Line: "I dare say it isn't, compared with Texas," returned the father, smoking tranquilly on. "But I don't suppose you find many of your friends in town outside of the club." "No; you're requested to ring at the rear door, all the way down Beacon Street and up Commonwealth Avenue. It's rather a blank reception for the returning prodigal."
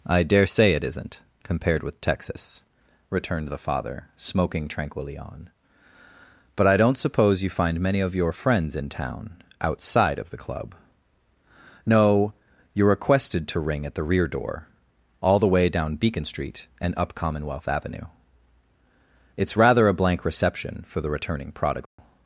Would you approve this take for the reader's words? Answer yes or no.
yes